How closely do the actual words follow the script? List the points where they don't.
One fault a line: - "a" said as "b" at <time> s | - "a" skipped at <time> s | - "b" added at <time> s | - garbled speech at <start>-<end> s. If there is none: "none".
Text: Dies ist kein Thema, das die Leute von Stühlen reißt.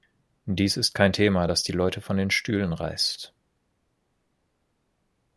- "den" added at 2.2 s